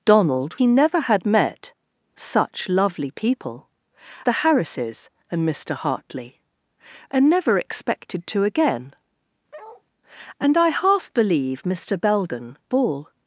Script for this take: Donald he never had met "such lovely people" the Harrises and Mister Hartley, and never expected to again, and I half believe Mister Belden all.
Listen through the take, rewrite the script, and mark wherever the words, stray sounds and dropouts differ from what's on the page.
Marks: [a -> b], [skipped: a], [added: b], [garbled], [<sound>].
Donald he never had met "such lovely people" the Harrises and Mister Hartley, and never expected to again, [bark] and I half believe Mister Belden all.